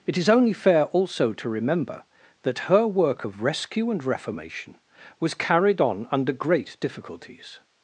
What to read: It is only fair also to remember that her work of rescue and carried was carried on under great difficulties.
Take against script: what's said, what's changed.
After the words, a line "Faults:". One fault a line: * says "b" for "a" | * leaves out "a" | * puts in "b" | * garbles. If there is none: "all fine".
It is only fair also to remember that her work of rescue and reformation was carried on under great difficulties.
Faults:
* says "reformation" for "carried"